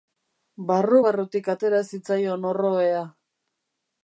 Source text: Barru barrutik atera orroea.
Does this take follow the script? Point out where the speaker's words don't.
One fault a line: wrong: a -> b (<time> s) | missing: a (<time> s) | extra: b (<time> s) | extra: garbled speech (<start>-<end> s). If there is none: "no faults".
extra: zitzaion (1.9 s)